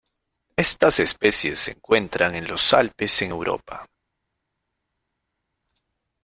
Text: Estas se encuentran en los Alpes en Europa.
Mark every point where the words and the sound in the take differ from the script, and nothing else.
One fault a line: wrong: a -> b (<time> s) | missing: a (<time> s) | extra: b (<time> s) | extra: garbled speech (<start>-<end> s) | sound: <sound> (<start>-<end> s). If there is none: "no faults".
extra: especies (1.0 s)